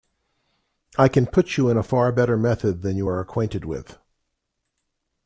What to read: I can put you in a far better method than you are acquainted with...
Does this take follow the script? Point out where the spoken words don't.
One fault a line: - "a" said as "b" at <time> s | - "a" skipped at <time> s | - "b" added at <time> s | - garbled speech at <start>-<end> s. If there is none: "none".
none